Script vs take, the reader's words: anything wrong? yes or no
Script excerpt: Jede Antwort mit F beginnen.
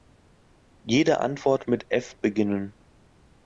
no